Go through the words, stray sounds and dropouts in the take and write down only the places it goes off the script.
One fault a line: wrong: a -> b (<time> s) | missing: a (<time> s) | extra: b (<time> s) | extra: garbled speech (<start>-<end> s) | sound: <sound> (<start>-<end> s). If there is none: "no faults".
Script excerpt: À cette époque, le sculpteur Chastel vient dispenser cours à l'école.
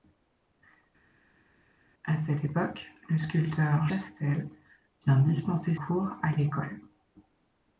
no faults